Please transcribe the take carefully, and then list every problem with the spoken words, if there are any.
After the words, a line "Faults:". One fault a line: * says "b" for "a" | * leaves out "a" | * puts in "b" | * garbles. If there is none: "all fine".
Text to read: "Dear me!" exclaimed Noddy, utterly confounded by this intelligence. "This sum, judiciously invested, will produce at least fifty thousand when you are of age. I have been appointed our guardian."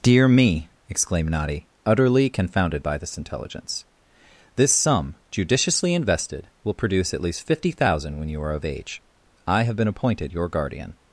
"Dear me!" exclaimed Noddy, utterly confounded by this intelligence. "This sum, judiciously invested, will produce at least fifty thousand when you are of age. I have been appointed your guardian."
Faults:
* says "your" for "our"